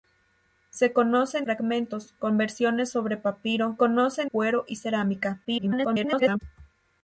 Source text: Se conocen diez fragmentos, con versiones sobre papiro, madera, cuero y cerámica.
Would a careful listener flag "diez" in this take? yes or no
yes